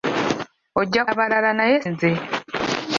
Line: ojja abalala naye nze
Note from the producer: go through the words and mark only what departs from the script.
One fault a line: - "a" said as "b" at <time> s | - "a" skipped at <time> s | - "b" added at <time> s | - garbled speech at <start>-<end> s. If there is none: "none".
none